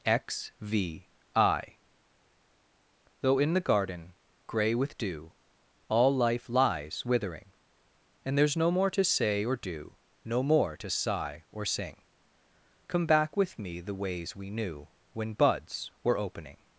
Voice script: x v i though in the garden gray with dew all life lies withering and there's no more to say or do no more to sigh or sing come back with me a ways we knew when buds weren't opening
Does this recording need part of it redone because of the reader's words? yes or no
yes